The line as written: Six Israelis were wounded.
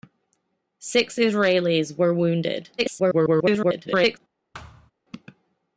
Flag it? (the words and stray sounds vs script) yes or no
yes